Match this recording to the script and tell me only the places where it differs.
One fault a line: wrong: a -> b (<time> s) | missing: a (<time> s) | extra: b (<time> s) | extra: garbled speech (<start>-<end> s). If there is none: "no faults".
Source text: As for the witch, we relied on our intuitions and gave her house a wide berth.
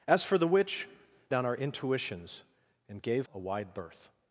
missing: we relied (0.9 s)
missing: her house (3.3 s)